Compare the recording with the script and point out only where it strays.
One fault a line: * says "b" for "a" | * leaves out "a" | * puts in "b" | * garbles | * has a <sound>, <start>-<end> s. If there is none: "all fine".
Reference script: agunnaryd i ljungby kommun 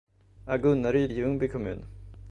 all fine